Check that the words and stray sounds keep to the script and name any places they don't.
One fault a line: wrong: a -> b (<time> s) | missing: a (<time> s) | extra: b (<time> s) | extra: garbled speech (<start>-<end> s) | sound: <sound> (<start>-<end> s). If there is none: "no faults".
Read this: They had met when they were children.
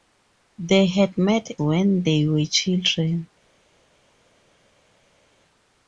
no faults